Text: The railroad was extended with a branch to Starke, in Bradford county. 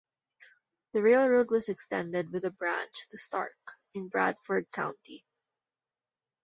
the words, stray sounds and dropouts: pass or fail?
pass